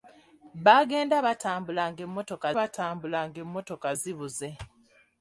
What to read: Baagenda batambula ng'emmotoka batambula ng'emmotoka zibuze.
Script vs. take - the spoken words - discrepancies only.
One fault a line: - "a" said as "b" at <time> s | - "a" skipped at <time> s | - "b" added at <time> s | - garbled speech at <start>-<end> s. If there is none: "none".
none